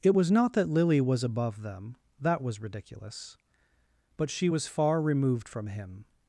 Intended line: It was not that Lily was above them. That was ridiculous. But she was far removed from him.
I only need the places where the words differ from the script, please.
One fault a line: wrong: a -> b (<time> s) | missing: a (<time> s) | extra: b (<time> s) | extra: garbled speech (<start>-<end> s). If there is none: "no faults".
no faults